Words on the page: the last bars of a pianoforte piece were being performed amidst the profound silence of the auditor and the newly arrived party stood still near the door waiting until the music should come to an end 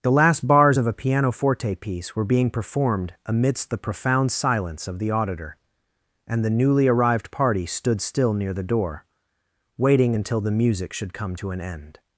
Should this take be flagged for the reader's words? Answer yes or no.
no